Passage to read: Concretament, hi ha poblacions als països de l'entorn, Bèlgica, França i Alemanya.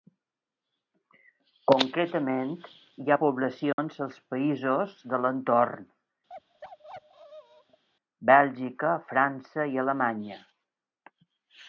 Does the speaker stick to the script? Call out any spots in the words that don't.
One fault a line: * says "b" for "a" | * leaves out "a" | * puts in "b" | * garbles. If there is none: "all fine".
all fine